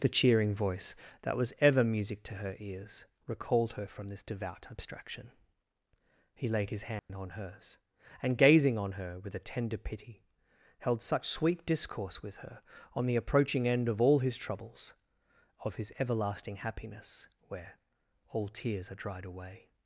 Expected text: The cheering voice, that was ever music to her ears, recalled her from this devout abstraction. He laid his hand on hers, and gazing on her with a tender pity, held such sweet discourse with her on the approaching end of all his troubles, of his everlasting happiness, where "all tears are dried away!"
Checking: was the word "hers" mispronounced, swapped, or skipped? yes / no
no